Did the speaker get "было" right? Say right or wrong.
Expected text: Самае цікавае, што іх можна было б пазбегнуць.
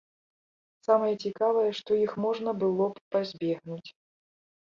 right